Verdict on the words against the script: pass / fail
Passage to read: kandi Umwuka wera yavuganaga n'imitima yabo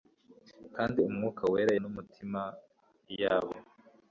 fail